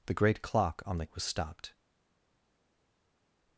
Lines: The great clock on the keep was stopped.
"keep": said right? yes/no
no